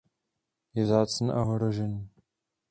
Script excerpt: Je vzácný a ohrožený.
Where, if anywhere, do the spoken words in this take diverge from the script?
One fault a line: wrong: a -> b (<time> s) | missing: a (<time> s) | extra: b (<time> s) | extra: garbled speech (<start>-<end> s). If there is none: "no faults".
no faults